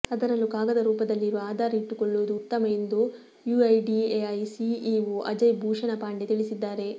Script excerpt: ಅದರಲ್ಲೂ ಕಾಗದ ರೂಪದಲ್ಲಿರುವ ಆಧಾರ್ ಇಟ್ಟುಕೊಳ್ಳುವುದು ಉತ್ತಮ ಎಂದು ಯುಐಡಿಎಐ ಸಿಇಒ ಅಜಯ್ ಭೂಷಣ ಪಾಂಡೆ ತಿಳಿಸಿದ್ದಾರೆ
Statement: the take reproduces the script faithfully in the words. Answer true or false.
true